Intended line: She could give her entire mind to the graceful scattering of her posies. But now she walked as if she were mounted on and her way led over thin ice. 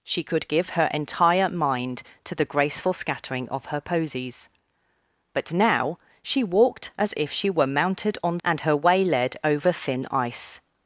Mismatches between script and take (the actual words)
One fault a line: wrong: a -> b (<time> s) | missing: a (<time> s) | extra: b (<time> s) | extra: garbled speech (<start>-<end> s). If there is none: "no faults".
no faults